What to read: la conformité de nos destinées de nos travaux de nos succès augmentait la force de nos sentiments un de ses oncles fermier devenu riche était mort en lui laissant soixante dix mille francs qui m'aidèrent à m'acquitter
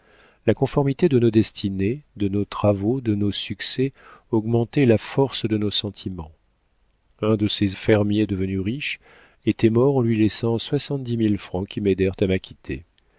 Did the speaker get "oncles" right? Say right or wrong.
wrong